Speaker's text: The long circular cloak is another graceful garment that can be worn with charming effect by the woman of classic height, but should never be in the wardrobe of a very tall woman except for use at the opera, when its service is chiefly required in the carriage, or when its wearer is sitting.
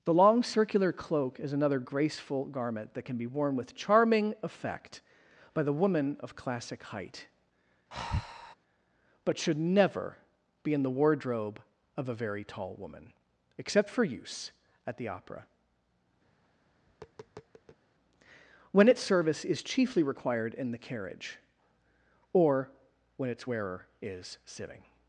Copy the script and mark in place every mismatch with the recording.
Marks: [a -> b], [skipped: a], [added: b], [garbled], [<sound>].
The long circular cloak is another graceful garment that can be worn with charming effect by the woman of classic height, [breath] but should never be in the wardrobe of a very tall woman except for use at the opera, [tap] when its service is chiefly required in the carriage, or when its wearer is sitting.